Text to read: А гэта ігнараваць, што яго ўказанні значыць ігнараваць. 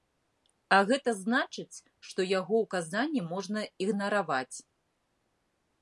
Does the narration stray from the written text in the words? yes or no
yes